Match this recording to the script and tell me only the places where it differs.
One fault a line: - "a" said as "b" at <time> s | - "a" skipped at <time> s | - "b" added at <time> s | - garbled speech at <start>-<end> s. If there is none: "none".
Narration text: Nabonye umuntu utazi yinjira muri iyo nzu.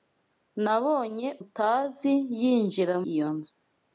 - "umuntu" skipped at 1.3 s
- "muri" skipped at 2.9 s